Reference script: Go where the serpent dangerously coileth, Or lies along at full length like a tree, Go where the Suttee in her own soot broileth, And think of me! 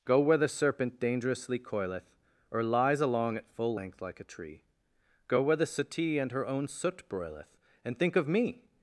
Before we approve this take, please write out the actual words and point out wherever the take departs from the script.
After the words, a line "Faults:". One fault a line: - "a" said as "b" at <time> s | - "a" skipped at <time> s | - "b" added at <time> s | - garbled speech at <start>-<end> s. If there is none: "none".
Go where the serpent dangerously coileth, Or lies along at full length like a tree, Go where the Suttee and her own soot broileth, And think of me!
Faults:
- "in" said as "and" at 6.2 s